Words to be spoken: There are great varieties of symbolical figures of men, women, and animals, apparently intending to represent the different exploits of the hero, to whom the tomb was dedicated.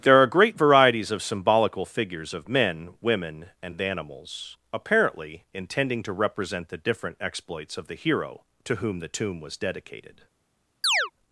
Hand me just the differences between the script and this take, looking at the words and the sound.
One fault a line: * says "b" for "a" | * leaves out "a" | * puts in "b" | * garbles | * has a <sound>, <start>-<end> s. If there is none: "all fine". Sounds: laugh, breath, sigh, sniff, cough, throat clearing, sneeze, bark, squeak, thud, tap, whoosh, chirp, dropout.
* has a chirp, 10.8-11.1 s